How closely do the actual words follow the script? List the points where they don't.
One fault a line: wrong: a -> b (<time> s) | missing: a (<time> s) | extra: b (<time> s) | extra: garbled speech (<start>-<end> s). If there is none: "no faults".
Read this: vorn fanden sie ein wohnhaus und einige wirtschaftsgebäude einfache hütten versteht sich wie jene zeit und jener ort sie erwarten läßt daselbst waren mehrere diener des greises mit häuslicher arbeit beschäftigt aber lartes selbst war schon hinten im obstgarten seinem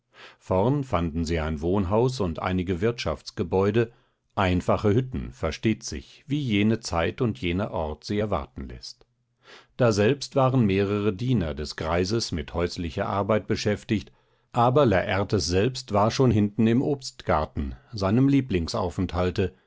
no faults